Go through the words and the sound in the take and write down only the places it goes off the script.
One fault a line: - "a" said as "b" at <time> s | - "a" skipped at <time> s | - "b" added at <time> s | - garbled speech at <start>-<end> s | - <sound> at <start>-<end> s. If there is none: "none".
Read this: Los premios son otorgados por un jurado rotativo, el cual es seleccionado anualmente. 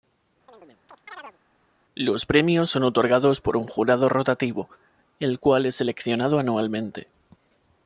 - chirp at 0.5-1.4 s